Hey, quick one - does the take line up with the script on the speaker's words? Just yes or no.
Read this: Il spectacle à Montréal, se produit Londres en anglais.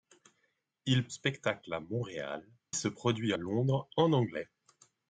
yes